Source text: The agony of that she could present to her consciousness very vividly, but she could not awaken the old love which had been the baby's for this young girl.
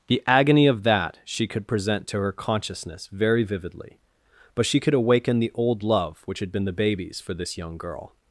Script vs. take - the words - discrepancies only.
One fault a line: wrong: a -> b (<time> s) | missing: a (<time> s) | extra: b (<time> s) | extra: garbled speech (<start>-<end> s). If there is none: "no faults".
missing: not (4.9 s)